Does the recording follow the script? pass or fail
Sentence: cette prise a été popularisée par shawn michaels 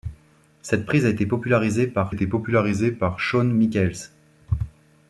fail